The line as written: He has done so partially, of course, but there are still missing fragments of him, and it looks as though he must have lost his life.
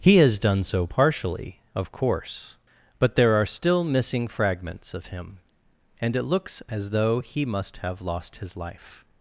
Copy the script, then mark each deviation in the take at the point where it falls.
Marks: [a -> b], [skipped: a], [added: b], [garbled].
He has done so partially, of course, but there are still missing fragments of him, and it looks as though he must have lost his life.